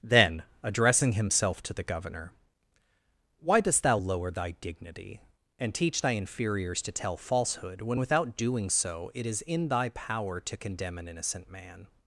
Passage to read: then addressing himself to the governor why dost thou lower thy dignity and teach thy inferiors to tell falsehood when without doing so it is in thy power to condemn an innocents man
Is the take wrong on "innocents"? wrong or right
wrong